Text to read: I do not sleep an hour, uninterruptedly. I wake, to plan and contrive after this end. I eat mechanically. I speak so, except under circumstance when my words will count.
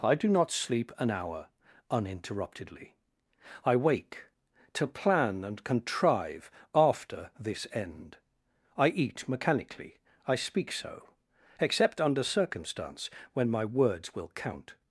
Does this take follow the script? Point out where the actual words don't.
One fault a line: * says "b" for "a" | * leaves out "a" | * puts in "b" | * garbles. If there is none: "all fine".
all fine